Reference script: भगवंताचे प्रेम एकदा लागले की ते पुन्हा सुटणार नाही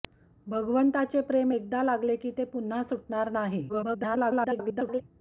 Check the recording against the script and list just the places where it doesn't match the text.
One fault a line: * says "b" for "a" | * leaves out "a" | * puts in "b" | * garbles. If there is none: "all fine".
* garbles